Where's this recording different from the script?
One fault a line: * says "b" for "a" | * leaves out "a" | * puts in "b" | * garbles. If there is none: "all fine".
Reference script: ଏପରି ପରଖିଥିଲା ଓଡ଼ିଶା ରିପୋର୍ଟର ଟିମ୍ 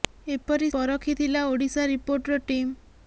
all fine